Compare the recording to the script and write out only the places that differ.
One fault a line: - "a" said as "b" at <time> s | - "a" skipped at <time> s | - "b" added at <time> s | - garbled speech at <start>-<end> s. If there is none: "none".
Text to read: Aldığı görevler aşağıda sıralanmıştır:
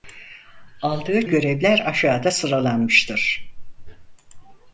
none